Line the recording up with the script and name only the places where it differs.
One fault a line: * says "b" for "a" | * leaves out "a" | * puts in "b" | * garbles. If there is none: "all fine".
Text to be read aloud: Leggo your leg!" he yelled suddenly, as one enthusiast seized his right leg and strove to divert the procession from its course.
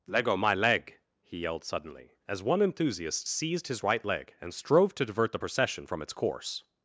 * says "my" for "your"